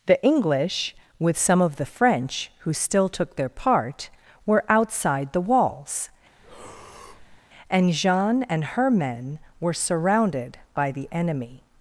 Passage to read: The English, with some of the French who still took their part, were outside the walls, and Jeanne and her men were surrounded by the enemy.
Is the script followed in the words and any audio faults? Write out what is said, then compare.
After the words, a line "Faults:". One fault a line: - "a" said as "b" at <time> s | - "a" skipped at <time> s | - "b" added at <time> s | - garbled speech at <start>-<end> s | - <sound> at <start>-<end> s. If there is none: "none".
The English, with some of the French who still took their part, were outside the walls, and Jeanne and her men were surrounded by the enemy.
Faults:
- breath at 6.4-7.4 s